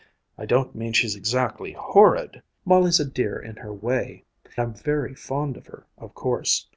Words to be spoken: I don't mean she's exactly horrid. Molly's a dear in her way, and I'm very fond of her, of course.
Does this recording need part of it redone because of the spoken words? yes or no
yes